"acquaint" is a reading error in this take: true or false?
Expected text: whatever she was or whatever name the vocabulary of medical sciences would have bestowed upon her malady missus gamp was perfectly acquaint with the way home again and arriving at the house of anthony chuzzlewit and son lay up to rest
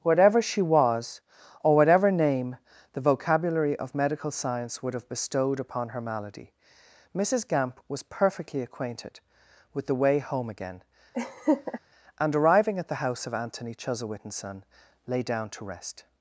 true